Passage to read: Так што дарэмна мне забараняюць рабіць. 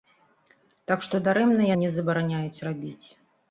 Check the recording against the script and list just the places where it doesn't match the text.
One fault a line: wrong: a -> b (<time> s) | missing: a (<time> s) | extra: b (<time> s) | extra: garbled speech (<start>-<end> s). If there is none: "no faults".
no faults